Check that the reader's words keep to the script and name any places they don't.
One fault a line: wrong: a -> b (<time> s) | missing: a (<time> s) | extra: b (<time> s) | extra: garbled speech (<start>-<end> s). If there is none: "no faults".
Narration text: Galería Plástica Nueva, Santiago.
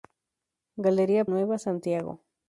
missing: Plástica (1.2 s)